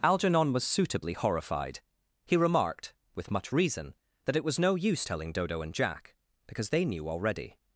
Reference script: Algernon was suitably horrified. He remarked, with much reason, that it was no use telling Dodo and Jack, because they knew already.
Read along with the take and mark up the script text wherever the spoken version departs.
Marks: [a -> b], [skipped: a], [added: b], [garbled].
Algernon was suitably horrified. He remarked, with much reason, that it was no use telling Dodo and Jack, because they knew already.